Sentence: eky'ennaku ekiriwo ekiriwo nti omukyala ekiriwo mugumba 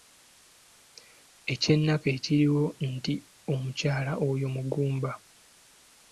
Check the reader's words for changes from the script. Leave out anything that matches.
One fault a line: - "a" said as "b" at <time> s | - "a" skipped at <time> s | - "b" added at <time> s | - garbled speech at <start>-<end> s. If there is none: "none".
- "ekiriwo" skipped at 2.6 s
- "ekiriwo" said as "oyo" at 4.3 s